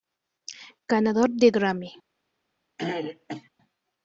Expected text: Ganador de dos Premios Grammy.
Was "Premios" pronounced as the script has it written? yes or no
no